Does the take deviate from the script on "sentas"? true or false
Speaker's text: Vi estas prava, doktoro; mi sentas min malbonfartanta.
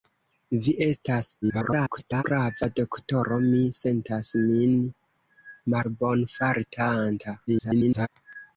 false